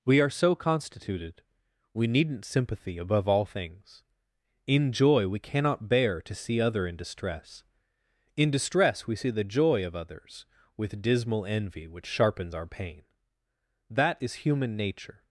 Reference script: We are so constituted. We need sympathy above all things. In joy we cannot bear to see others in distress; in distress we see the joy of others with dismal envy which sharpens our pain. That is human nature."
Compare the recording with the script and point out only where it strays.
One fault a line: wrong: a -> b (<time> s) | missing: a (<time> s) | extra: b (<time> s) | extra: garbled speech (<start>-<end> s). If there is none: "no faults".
wrong: need -> needn't (2.1 s)
wrong: others -> other (6.6 s)